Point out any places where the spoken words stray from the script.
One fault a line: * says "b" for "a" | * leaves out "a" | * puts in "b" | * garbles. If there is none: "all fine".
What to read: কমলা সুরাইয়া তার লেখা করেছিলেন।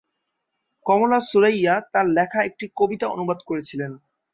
* puts in "একটি কবিতা অনুবাদ"